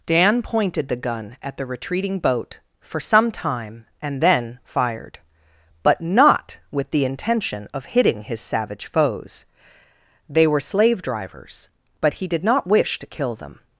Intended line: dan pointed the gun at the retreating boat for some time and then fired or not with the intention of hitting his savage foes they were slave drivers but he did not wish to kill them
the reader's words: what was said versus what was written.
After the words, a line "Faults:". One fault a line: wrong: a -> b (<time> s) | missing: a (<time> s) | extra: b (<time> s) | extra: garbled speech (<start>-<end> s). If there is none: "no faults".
dan pointed the gun at the retreating boat for some time and then fired but not with the intention of hitting his savage foes they were slave drivers but he did not wish to kill them
Faults:
wrong: or -> but (5.8 s)